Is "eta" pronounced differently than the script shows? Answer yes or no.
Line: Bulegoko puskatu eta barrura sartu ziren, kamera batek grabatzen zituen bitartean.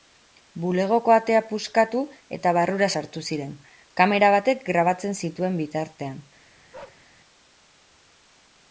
no